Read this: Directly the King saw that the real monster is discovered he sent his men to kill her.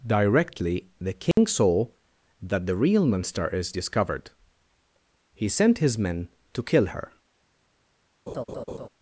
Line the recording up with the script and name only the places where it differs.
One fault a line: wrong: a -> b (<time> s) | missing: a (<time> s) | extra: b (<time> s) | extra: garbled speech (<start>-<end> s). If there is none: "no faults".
no faults